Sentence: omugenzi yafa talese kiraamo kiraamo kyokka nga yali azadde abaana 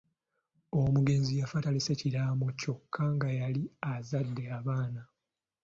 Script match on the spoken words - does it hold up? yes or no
no